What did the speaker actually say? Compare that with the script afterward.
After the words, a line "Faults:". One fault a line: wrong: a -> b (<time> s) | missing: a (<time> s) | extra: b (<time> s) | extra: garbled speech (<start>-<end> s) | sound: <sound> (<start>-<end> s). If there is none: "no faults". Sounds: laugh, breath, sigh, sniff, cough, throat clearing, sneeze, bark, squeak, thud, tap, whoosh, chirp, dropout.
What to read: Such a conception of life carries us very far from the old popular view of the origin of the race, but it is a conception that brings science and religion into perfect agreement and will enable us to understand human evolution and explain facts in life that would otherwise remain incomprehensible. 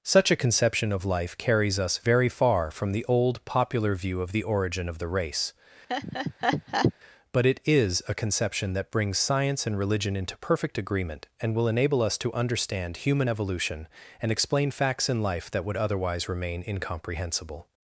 Such a conception of life carries us very far from the old popular view of the origin of the race, but it is a conception that brings science and religion into perfect agreement and will enable us to understand human evolution and explain facts in life that would otherwise remain incomprehensible.
Faults:
sound: laugh (5.9-6.9 s)